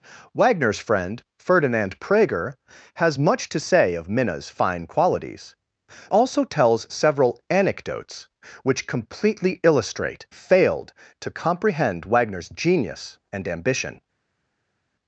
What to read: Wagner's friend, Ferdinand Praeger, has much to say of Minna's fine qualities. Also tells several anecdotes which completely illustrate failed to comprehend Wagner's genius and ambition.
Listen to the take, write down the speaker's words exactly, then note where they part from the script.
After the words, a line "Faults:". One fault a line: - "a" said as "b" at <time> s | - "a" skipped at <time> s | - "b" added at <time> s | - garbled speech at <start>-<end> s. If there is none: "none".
Wagner's friend, Ferdinand Praeger, has much to say of Minna's fine qualities. Also tells several anecdotes which completely illustrate failed to comprehend Wagner's genius and ambition.
Faults:
none